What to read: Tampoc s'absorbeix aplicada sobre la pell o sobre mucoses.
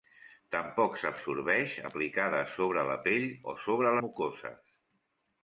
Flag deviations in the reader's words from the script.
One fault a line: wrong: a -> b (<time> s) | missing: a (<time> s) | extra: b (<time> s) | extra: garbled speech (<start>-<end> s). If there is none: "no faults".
no faults